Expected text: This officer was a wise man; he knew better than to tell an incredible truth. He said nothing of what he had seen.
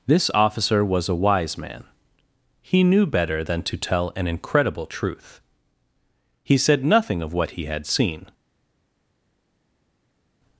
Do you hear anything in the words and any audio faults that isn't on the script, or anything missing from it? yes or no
no